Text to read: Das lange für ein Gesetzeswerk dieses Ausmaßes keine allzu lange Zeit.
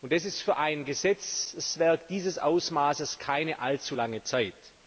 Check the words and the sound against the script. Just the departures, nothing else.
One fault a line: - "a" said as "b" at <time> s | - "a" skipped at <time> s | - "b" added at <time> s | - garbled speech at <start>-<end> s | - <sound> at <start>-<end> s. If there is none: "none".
- "lange" said as "ist" at 0.2 s